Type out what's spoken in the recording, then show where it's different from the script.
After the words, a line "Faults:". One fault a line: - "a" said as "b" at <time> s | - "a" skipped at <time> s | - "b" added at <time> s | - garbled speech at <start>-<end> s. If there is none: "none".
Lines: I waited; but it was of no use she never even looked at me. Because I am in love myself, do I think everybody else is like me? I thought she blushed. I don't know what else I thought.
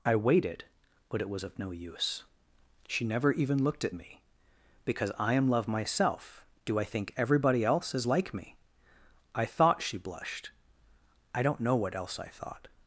I waited; but it was of no use she never even looked at me. Because I am love myself, do I think everybody else is like me? I thought she blushed. I don't know what else I thought.
Faults:
- "in" skipped at 5.5 s